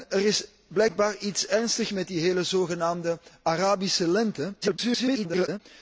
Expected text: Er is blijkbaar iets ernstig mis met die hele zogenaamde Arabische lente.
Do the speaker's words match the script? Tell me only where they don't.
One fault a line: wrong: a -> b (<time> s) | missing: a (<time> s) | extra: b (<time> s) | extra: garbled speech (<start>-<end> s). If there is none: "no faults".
missing: mis (1.9 s)
extra: garbled speech (4.6-5.6 s)